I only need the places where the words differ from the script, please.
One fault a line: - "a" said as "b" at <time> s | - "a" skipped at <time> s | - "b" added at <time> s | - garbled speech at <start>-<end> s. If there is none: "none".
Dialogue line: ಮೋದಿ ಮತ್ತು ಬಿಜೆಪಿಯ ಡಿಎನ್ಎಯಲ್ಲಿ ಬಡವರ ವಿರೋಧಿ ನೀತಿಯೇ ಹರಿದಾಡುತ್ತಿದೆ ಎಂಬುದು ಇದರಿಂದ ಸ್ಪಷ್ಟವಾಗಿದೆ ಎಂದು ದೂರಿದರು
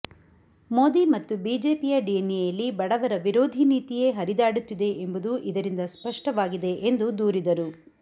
none